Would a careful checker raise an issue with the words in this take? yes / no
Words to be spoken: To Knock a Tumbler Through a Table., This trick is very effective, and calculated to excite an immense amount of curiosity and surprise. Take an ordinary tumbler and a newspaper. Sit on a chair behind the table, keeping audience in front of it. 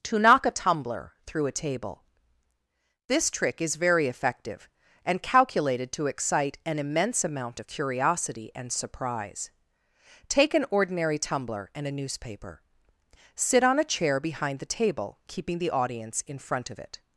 yes